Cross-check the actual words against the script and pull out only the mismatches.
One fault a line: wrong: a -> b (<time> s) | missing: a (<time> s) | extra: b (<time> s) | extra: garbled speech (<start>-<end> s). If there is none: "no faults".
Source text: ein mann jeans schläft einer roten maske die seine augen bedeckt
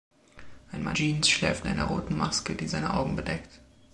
no faults